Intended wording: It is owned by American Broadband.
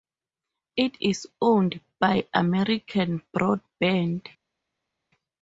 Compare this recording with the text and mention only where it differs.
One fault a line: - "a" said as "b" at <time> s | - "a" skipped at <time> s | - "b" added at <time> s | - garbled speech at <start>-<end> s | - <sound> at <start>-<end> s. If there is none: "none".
none